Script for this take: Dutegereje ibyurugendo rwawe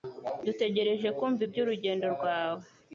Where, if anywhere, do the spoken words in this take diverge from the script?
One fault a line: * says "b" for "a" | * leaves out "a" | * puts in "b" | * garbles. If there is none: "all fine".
* puts in "kumva"